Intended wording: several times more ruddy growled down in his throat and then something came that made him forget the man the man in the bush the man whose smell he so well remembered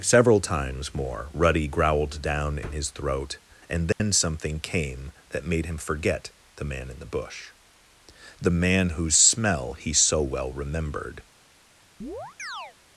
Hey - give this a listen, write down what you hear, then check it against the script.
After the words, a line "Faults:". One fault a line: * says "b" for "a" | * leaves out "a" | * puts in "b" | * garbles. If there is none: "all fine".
several times more ruddy growled down in his throat and then something came that made him forget the man in the bush the man whose smell he so well remembered
Faults:
* leaves out "the man"